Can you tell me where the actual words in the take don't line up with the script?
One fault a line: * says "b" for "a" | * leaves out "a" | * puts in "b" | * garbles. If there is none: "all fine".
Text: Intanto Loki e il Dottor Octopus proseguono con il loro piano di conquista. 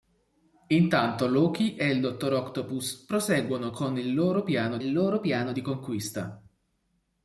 * puts in "il loro piano"